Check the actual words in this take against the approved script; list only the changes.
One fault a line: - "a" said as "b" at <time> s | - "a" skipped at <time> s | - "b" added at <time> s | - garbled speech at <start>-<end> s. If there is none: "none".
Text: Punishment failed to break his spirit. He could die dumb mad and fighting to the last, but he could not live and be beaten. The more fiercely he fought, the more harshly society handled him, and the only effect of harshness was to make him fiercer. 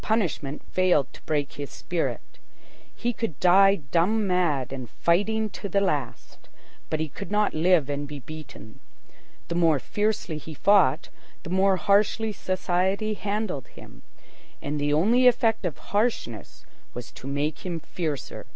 none